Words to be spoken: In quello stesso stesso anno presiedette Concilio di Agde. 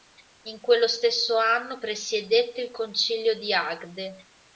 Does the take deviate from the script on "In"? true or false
false